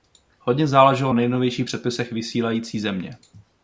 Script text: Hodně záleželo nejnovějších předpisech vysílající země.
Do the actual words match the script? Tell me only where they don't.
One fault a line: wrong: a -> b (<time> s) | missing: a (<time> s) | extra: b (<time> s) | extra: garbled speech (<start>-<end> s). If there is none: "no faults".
no faults